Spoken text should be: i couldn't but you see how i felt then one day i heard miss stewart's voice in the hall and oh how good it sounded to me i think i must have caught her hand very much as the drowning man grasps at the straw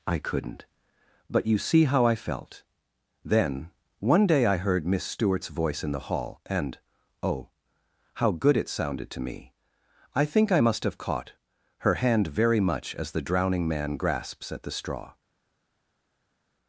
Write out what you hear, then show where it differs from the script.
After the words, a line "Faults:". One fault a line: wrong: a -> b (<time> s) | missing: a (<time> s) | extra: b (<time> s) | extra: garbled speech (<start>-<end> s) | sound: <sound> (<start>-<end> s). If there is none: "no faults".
i couldn't but you see how i felt then one day i heard miss stewart's voice in the hall and oh how good it sounded to me i think i must have caught her hand very much as the drowning man grasps at the straw
Faults:
no faults